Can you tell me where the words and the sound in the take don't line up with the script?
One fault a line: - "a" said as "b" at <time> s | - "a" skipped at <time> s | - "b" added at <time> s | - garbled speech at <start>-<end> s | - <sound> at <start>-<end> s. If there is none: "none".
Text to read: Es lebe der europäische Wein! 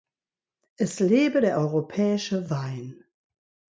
none